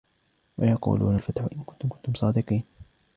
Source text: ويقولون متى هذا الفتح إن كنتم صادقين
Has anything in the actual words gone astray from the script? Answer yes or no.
yes